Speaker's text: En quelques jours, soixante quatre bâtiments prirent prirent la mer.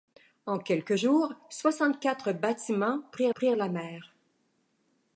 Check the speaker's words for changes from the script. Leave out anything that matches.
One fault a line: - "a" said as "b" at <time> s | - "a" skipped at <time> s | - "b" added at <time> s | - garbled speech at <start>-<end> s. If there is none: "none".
none